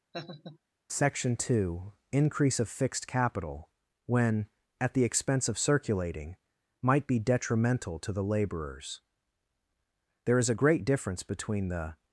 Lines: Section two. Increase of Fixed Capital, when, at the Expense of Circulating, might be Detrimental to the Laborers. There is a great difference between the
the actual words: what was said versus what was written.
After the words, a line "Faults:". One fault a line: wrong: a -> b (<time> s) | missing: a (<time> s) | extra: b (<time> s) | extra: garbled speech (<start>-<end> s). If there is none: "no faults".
Section two. Increase of Fixed Capital, when, at the Expense of Circulating, might be Detrimental to the Laborers. There is a great difference between the
Faults:
no faults